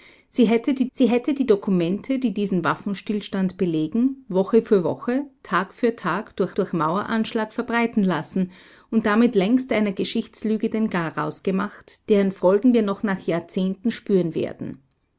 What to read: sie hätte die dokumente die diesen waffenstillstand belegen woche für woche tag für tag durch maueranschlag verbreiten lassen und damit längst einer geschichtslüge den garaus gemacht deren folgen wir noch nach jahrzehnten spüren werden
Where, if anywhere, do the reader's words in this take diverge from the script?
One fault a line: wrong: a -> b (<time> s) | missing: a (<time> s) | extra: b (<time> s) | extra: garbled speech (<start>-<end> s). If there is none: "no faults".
extra: sie hätte die (0.9 s)
extra: durch (6.5 s)